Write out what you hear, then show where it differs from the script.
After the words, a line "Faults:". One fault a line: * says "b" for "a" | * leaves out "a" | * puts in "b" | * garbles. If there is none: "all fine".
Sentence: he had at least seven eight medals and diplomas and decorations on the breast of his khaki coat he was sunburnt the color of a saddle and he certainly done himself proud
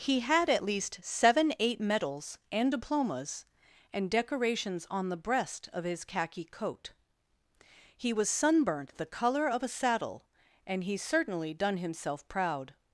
he had at least seven eight medals and diplomas and decorations on the breast of his khaki coat he was sunburnt the color of a saddle and he certainly done himself proud
Faults:
all fine